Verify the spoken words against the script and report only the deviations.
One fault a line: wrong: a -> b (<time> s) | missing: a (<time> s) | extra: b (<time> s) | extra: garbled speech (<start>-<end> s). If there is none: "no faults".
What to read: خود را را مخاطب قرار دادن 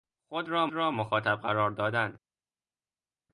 no faults